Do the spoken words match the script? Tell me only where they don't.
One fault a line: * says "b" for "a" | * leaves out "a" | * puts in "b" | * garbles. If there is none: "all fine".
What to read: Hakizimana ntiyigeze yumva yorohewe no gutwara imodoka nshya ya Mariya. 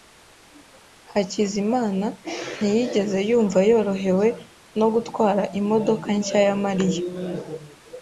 all fine